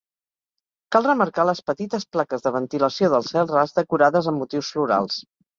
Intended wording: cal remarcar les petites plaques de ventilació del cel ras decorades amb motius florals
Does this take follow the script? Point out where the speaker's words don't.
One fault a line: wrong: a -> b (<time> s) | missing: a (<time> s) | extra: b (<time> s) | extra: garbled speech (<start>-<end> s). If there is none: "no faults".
no faults